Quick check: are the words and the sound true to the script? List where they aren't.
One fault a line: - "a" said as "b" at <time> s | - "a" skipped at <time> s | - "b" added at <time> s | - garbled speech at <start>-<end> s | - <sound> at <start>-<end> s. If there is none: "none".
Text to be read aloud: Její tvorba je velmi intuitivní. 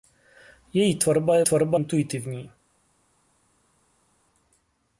- "velmi" said as "tvorba" at 1.4 s